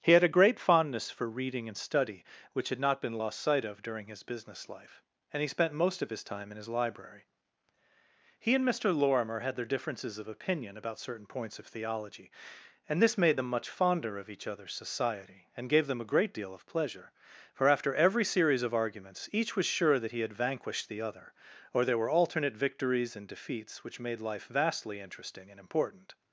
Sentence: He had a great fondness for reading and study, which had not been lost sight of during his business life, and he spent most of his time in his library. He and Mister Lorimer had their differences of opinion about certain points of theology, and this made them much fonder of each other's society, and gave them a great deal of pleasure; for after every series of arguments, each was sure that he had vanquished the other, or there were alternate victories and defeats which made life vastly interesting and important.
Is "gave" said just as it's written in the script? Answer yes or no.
yes